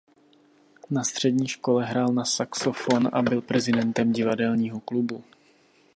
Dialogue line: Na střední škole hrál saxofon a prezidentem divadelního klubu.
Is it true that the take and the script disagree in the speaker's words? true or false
true